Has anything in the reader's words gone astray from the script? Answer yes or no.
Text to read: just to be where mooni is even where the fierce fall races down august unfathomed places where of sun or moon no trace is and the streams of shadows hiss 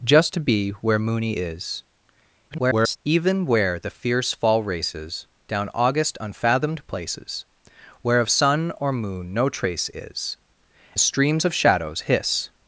yes